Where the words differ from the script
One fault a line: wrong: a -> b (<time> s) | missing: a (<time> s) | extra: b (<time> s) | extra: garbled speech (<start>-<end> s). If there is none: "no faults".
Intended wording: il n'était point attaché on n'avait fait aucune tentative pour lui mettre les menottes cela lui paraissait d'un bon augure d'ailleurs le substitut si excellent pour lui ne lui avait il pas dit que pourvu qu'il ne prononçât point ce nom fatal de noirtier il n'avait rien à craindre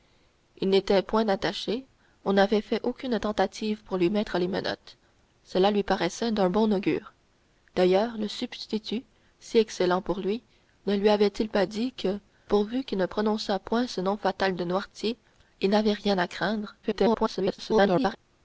extra: garbled speech (16.8-18.2 s)